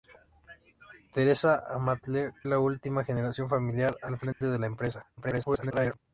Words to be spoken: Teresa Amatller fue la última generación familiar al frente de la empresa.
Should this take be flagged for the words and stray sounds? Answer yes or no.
yes